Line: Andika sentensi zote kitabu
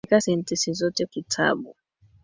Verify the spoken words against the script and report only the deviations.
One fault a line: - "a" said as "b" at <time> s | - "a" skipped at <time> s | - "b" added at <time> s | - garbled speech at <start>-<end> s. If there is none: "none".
none